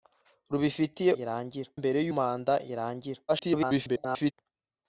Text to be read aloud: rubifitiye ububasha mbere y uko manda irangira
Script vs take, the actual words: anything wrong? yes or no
yes